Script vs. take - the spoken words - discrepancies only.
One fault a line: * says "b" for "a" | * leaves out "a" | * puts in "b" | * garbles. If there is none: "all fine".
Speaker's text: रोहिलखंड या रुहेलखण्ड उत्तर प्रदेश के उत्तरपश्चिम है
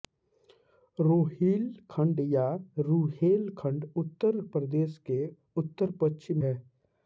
all fine